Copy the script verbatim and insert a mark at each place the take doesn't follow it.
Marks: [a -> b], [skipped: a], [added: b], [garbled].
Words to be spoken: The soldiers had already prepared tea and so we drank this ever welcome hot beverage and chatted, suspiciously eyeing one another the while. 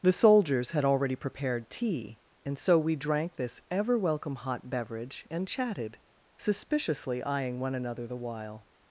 The soldiers had already prepared tea and so we drank this ever welcome hot beverage and chatted, suspiciously eyeing one another the while.